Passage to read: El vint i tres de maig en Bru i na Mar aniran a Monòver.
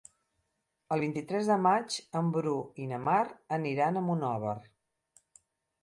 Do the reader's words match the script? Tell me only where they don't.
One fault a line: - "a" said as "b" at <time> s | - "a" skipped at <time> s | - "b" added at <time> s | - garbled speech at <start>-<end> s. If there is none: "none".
none